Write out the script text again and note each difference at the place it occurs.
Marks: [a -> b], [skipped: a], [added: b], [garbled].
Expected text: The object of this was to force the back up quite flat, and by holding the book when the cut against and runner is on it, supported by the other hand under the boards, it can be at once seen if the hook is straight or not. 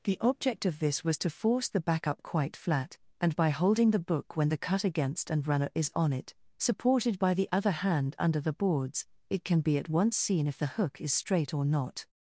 The object of this was to force the back up quite flat, and by holding the book when the cut against and runner is on it, supported by the other hand under the boards, it can be at once seen if the hook is straight or not.